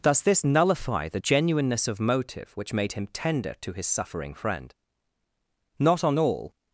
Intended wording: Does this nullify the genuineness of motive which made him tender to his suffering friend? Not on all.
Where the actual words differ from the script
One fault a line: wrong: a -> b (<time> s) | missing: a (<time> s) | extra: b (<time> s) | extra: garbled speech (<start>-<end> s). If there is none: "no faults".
no faults